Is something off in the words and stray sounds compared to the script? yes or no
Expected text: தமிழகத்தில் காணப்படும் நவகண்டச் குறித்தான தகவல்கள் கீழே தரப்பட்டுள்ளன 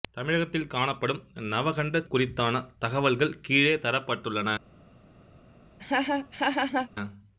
yes